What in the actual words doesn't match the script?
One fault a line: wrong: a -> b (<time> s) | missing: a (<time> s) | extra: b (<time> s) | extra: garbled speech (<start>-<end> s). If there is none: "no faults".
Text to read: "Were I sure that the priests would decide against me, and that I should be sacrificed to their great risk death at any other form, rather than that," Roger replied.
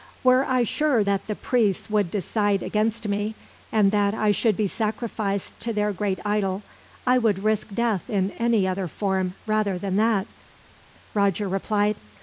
extra: idol I would (6.2 s)
wrong: at -> in (8.1 s)